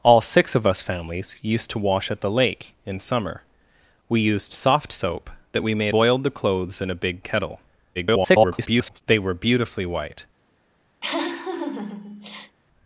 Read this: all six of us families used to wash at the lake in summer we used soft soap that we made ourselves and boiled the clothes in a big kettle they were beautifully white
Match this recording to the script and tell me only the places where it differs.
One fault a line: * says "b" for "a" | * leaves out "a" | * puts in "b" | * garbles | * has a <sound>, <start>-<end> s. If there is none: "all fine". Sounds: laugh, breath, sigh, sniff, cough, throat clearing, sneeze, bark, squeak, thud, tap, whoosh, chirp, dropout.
* leaves out "ourselves and"
* garbles
* has a laugh, 11.0-12.6 s